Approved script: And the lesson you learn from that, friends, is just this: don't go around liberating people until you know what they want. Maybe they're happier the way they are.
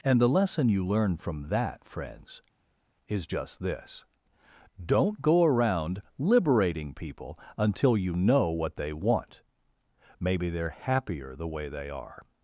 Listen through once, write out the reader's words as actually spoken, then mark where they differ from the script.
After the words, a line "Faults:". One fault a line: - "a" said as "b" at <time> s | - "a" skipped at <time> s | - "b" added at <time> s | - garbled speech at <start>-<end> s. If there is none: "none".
And the lesson you learn from that, friends, is just this: don't go around liberating people until you know what they want. Maybe they're happier the way they are.
Faults:
none